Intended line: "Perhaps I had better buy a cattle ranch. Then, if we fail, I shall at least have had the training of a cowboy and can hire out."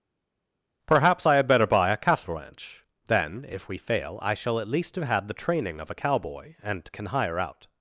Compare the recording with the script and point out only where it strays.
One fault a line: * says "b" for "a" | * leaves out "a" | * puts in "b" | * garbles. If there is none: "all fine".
all fine